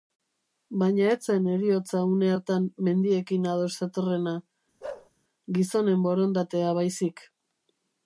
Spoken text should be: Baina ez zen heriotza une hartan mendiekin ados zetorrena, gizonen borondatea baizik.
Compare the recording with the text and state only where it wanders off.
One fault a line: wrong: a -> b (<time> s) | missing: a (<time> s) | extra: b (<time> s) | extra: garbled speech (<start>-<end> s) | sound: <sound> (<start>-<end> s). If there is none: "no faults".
sound: bark (4.8-5.1 s)